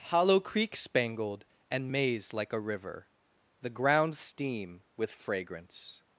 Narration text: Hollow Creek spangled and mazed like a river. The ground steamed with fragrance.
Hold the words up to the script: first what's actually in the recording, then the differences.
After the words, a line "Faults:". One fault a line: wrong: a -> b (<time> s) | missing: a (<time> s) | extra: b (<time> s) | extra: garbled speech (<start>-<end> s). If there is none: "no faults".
Hollow Creek spangled and maze like a river. The ground steam with fragrance.
Faults:
wrong: mazed -> maze (1.9 s)
wrong: steamed -> steam (4.2 s)